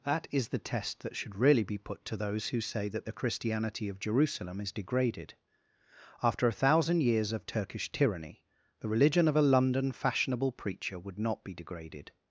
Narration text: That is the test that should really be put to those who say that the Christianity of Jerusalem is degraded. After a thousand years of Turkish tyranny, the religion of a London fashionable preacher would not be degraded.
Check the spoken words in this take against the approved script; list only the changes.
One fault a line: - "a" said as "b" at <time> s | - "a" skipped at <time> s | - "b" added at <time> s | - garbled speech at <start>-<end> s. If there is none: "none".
none